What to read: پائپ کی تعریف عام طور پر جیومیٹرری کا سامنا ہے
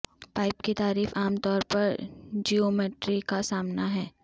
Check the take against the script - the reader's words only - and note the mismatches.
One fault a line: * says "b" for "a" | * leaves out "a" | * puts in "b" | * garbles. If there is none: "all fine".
all fine